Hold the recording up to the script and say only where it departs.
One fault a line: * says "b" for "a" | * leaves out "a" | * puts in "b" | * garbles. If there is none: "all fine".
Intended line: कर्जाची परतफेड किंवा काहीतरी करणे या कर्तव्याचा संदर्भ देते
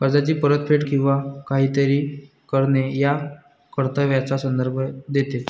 all fine